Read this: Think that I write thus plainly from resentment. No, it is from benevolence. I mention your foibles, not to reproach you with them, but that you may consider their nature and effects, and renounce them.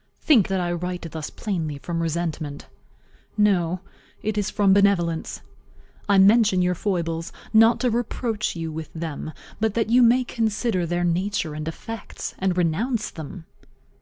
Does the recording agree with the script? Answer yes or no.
yes